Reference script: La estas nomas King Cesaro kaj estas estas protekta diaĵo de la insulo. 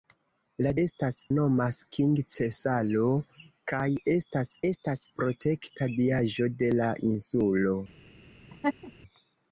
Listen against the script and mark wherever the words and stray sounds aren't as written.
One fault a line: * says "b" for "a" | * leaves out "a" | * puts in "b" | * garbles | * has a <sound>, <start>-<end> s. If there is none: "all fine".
* has a laugh, 8.5-8.9 s